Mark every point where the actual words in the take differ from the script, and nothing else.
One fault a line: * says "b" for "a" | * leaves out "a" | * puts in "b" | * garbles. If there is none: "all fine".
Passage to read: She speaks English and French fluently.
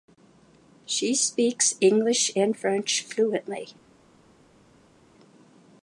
all fine